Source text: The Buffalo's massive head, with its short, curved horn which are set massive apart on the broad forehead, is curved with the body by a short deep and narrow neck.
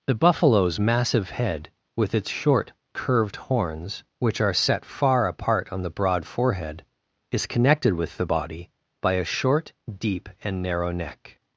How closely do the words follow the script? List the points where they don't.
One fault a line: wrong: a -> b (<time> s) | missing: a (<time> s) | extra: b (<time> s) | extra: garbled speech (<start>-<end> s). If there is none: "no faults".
wrong: horn -> horns (3.4 s)
wrong: massive -> far (4.9 s)
wrong: curved -> connected (7.5 s)